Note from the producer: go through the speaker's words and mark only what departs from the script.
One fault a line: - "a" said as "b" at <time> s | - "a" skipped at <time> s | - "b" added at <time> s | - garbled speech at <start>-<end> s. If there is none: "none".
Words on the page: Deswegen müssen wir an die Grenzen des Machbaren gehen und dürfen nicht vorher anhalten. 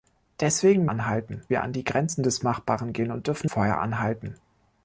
- "müssen" said as "anhalten" at 0.9 s
- "nicht" skipped at 3.5 s